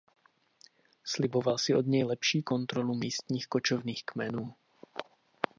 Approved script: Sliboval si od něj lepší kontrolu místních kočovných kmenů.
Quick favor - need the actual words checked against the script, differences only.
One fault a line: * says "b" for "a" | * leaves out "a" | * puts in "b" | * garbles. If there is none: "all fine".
all fine